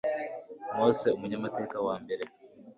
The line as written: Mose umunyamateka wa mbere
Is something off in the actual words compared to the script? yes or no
no